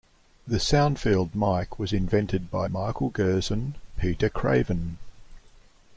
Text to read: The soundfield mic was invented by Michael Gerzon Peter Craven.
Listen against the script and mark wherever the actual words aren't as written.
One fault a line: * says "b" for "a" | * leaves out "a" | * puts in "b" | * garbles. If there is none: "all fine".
all fine